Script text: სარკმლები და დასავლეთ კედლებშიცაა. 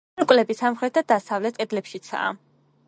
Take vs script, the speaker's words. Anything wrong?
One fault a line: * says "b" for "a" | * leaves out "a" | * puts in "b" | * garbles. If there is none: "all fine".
* puts in "სამხრეთ"